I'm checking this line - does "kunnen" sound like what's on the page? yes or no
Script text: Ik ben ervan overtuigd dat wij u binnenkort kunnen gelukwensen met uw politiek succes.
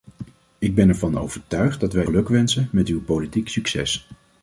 no